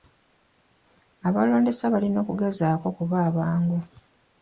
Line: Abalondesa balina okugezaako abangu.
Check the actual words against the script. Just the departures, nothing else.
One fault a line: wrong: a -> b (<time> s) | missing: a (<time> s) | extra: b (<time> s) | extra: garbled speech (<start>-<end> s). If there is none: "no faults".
extra: okuba (2.9 s)